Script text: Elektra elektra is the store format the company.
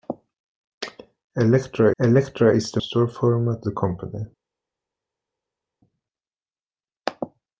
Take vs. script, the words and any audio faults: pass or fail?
pass